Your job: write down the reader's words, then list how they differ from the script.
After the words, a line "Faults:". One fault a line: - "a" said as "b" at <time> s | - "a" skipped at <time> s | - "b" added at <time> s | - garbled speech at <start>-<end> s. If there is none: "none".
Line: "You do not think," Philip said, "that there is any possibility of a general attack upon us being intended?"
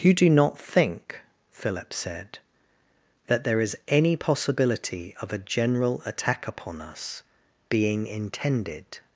"You do not think," Philip said, "that there is any possibility of a general attack upon us being intended?"
Faults:
none